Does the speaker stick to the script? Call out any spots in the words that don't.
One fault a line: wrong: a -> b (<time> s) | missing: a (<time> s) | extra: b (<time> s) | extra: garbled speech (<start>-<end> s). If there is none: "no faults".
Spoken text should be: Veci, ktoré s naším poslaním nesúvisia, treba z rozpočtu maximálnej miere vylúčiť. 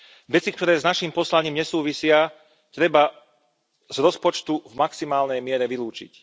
extra: v (4.6 s)